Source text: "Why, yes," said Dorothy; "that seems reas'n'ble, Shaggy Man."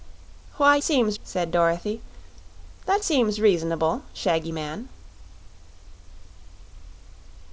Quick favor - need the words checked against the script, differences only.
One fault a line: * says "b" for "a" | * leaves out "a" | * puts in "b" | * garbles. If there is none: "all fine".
* says "seems" for "yes"